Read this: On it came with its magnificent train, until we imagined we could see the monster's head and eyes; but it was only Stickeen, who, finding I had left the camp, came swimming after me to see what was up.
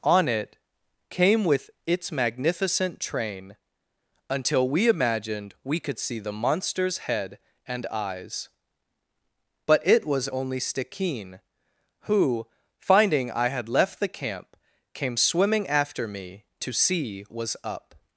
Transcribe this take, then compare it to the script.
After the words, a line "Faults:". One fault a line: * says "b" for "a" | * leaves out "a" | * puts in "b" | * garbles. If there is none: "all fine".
On it came with its magnificent train, until we imagined we could see the monster's head and eyes; but it was only Stickeen, who, finding I had left the camp, came swimming after me to see was up.
Faults:
* leaves out "what"